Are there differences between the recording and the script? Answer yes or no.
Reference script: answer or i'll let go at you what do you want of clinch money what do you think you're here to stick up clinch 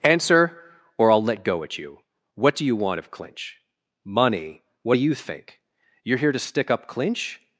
no